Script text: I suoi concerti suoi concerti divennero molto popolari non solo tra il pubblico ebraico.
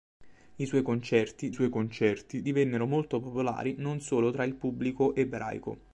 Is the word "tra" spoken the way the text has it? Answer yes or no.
yes